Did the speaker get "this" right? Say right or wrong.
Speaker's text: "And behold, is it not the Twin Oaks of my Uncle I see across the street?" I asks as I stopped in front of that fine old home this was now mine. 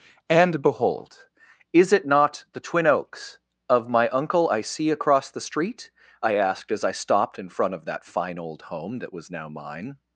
wrong